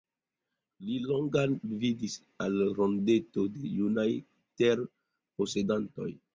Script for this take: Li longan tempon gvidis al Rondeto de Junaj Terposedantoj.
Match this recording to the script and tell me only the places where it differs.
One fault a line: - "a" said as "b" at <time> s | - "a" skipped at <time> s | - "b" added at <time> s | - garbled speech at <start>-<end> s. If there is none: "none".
- "tempon" skipped at 1.5 s